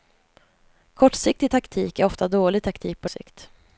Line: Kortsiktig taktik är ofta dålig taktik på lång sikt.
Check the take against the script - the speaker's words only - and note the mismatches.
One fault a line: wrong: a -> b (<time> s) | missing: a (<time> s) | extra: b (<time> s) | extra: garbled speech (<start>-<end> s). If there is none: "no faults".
missing: lång (3.1 s)